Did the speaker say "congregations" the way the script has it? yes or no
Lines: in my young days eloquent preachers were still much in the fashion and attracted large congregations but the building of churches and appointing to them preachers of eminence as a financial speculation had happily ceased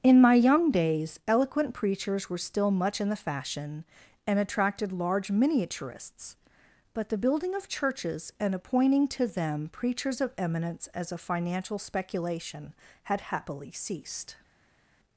no